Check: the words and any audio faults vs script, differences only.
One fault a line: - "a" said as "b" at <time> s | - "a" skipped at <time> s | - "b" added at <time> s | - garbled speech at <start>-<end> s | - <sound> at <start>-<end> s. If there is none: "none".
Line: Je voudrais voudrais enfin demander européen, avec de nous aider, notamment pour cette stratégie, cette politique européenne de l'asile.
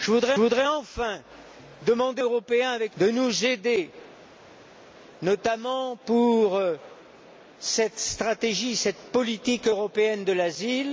none